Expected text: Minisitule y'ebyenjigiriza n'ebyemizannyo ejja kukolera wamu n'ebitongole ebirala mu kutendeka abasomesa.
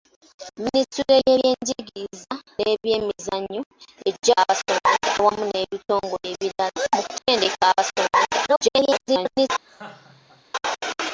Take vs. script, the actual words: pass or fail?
fail